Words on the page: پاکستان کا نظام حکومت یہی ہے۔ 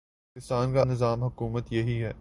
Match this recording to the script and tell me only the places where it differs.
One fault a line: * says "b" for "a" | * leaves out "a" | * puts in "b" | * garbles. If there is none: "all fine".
all fine